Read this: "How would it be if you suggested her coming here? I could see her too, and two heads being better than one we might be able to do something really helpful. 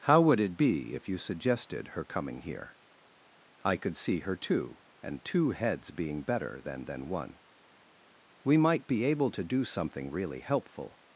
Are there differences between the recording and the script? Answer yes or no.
yes